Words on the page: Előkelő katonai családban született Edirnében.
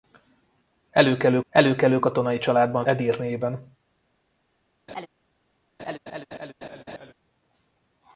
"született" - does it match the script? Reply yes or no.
no